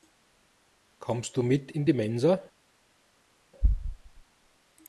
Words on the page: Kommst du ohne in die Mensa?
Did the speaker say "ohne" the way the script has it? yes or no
no